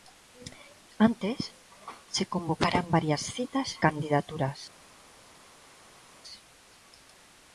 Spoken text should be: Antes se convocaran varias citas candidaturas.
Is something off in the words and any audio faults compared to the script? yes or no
no